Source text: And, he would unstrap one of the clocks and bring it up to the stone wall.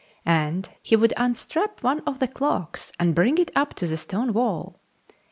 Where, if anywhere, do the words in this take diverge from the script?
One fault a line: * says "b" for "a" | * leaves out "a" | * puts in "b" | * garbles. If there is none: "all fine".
all fine